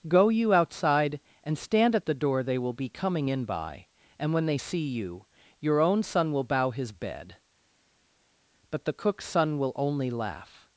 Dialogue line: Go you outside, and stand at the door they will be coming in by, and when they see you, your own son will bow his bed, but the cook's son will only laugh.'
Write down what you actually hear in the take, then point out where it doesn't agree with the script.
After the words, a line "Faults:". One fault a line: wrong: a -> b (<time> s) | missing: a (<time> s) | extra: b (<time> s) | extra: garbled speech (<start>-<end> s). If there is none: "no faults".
Go you outside, and stand at the door they will be coming in by, and when they see you, your own son will bow his bed, but the cook's son will only laugh.'
Faults:
no faults